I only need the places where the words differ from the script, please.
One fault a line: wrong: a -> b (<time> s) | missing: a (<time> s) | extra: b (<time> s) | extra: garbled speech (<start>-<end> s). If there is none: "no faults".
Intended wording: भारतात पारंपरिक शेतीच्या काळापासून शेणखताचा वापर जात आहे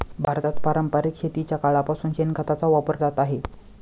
no faults